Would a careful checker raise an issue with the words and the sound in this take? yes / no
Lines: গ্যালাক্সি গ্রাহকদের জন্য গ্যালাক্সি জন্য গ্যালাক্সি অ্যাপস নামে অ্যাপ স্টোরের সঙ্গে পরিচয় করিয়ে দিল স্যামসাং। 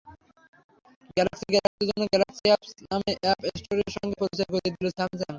yes